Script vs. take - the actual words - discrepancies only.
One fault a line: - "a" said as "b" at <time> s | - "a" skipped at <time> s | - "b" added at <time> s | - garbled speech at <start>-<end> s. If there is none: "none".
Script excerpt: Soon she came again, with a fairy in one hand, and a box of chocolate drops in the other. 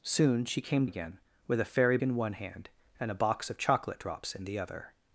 none